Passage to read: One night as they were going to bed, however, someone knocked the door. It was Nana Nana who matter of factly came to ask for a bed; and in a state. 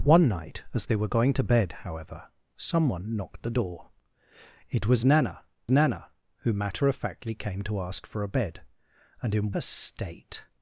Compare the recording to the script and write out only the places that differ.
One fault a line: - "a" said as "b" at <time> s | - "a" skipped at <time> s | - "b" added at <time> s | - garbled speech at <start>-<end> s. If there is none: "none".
none